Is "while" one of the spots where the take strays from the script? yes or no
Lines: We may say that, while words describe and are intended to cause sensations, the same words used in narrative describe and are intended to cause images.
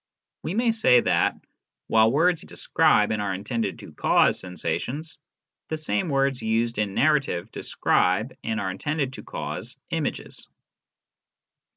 no